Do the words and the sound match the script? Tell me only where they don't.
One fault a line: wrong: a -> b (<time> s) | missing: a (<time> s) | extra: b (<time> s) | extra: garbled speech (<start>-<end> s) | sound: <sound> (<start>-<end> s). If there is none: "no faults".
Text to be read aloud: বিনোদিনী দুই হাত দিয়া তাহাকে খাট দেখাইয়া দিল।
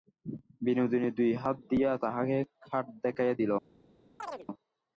sound: chirp (4.2-4.5 s)